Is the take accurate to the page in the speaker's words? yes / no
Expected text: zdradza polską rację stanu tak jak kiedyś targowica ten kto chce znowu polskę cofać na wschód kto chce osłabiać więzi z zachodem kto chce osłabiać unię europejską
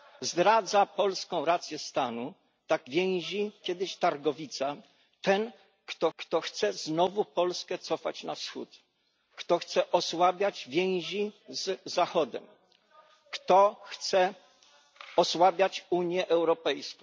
no